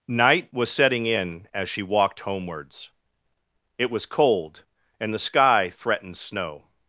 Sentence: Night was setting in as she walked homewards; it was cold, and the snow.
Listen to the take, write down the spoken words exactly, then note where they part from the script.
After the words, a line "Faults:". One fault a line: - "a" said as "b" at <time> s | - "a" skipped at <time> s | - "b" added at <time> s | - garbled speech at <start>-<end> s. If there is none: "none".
Night was setting in as she walked homewards; it was cold, and the sky threatened snow.
Faults:
- "sky threatened" added at 5.2 s